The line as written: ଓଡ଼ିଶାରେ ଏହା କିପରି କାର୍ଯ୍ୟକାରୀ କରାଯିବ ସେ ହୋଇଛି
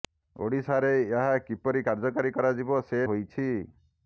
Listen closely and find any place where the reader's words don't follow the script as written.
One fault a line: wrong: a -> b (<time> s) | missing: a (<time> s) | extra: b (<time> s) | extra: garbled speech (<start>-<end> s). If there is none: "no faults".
no faults